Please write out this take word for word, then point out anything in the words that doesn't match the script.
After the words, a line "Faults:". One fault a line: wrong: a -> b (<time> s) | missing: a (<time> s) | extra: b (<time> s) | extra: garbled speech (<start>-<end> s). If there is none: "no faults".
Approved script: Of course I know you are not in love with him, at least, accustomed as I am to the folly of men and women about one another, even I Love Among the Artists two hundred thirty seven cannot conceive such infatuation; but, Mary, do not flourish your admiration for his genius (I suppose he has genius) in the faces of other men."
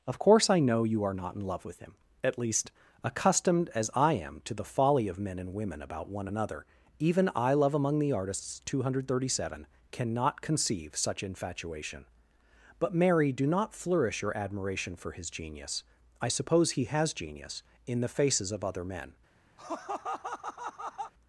Of course I know you are not in love with him, at least, accustomed as I am to the folly of men and women about one another, even I Love Among the Artists two hundred thirty seven cannot conceive such infatuation; but, Mary, do not flourish your admiration for his genius (I suppose he has genius) in the faces of other men."
Faults:
no faults